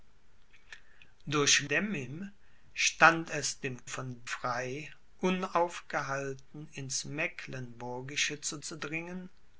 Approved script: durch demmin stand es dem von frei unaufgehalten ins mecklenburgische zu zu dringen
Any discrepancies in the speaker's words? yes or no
no